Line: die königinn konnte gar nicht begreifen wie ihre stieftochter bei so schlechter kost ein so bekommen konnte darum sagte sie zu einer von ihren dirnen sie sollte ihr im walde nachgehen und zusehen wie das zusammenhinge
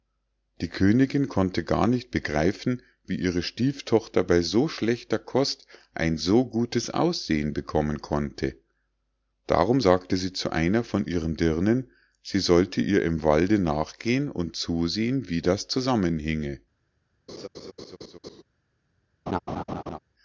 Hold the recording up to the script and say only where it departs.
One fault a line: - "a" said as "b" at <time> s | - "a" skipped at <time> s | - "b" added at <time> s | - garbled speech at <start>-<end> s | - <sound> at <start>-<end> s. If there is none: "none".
- "gutes aussehen" added at 6.5 s
- laugh at 17.3-18.4 s
- laugh at 19.3-20.0 s